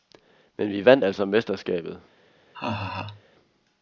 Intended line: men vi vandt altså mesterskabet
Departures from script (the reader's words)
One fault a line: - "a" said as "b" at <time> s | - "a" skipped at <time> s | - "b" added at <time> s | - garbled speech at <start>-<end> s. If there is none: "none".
none